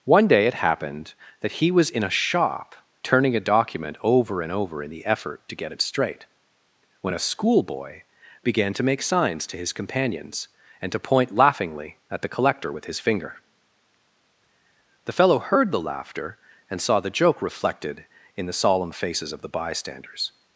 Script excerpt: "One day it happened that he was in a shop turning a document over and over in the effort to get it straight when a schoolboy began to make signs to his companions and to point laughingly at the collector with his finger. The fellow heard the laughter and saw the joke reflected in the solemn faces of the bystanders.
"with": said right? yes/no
yes